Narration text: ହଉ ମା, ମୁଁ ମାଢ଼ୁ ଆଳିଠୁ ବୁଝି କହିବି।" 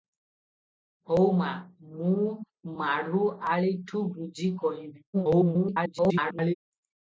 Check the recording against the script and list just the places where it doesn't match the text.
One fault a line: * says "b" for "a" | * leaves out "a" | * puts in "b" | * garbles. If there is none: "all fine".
* garbles